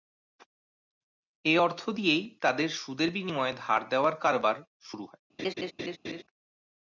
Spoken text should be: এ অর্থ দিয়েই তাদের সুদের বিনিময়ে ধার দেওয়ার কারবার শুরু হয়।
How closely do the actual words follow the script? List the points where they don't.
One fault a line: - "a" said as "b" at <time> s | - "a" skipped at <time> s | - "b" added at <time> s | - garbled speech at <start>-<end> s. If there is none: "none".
none